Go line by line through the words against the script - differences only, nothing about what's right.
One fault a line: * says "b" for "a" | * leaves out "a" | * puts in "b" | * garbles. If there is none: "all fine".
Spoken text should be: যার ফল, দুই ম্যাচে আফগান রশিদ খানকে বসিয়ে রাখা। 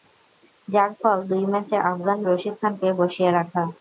all fine